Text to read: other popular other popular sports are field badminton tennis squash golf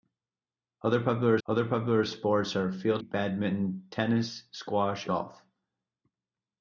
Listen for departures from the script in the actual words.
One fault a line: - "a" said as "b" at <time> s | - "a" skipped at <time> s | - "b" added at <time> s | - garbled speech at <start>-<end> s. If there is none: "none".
none